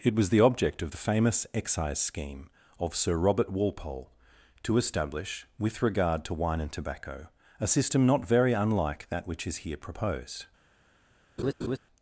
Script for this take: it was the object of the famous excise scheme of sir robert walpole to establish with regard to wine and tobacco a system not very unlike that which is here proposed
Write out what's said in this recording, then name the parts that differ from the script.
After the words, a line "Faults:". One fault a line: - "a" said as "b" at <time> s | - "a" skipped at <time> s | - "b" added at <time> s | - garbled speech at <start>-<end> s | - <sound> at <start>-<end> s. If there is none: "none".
it was the object of the famous excise scheme of sir robert walpole to establish with regard to wine and tobacco a system not very unlike that which is here proposed
Faults:
- laugh at 11.4-11.8 s